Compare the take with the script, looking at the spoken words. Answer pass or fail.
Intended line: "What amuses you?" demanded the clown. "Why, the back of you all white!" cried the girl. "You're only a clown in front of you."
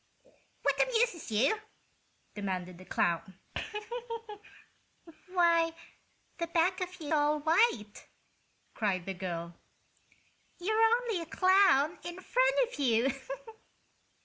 pass